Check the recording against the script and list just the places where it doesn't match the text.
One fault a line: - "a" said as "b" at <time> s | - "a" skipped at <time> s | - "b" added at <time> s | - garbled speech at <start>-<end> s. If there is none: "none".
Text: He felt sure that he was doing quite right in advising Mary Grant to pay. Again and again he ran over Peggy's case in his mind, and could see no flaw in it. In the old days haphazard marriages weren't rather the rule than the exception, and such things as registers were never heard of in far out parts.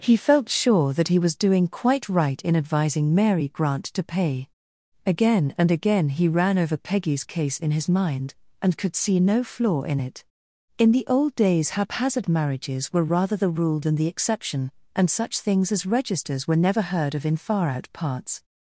- "weren't" said as "were" at 12.9 s